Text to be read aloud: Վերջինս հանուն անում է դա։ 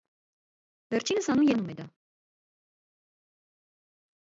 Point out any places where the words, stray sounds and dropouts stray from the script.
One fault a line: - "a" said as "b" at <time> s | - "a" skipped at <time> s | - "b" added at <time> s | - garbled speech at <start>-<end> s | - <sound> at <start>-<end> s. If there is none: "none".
none